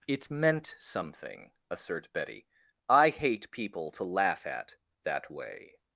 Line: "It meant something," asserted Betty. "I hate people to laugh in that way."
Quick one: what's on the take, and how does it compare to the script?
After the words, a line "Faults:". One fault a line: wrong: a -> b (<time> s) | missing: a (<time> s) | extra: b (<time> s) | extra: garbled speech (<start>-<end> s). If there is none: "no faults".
"It meant something," assert Betty. "I hate people to laugh at that way."
Faults:
wrong: asserted -> assert (1.7 s)
wrong: in -> at (4.5 s)